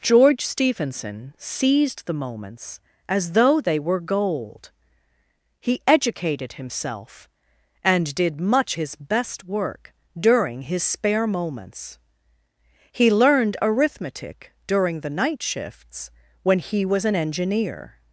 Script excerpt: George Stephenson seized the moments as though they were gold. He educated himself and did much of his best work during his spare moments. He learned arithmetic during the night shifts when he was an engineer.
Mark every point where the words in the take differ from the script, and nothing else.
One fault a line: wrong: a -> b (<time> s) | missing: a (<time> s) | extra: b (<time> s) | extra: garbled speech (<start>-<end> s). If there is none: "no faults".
missing: of (8.8 s)